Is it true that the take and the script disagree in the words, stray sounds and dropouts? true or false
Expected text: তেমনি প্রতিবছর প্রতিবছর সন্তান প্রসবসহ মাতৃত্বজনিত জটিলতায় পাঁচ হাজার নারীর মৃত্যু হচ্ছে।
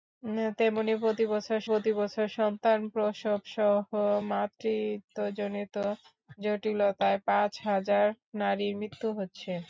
false